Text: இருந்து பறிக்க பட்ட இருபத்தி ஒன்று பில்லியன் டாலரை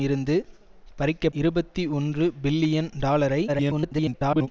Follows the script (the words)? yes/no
no